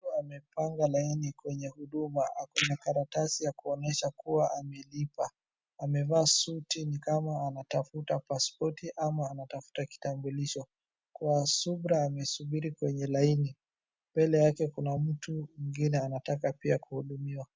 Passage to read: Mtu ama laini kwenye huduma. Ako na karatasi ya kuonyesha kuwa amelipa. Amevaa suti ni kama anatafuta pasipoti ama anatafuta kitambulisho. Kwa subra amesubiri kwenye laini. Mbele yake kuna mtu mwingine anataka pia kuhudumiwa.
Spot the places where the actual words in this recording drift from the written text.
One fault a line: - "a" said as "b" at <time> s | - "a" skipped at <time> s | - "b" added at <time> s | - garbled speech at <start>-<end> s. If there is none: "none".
- "ama" said as "amepanga" at 0.1 s